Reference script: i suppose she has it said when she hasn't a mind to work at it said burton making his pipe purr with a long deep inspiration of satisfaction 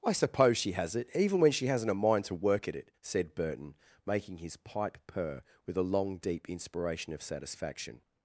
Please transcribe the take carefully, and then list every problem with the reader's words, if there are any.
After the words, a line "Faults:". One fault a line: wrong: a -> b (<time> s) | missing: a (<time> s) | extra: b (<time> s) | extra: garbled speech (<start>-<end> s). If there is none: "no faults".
i suppose she has it even when she hasn't a mind to work at it said burton making his pipe purr with a long deep inspiration of satisfaction
Faults:
wrong: said -> even (1.1 s)